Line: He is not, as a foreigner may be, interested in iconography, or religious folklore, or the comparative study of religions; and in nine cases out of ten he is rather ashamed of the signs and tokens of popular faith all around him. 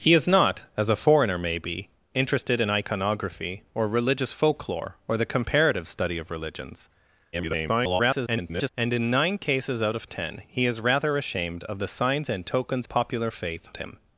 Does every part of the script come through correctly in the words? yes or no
no